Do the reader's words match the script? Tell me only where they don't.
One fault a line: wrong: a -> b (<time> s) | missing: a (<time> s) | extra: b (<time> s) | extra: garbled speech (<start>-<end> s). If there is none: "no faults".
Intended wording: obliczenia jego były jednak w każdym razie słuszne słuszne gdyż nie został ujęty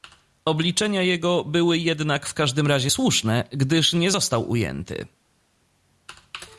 missing: słuszne (3.4 s)